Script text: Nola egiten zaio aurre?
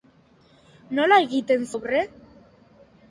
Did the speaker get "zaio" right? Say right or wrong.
wrong